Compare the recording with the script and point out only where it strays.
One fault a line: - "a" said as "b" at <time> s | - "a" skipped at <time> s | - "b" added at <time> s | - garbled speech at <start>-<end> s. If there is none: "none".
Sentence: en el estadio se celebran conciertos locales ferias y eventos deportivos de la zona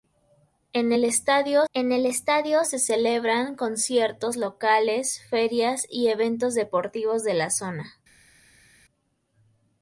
- "en el estadio" added at 1.7 s